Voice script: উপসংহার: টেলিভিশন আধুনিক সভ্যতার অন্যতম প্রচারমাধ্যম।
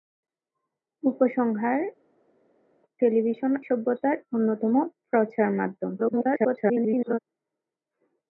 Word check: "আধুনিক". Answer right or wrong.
wrong